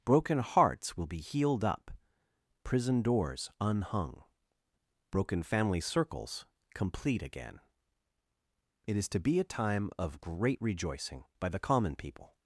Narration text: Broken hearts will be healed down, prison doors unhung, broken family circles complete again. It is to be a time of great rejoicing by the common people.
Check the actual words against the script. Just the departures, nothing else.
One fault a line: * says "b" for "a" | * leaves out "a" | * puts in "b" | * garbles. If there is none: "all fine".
* says "up" for "down"